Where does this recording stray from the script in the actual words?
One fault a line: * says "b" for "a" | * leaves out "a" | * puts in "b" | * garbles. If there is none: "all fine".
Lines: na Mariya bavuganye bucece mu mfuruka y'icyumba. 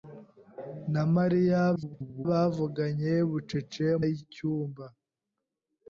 * garbles
* leaves out "mu mfuruka"